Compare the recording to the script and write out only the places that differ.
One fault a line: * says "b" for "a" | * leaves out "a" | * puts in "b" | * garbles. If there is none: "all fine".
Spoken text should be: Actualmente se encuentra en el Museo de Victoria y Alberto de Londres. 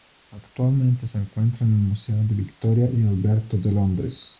all fine